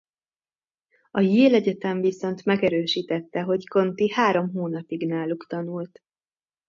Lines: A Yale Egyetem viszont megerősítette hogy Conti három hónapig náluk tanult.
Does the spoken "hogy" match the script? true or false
true